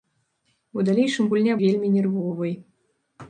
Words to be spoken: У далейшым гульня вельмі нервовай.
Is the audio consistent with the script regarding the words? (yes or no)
yes